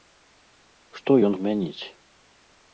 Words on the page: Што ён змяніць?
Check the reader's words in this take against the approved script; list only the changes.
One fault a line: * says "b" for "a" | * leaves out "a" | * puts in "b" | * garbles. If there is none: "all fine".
all fine